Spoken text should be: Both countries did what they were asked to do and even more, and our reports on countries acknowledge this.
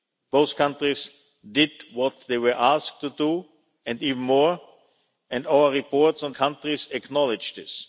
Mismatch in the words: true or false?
false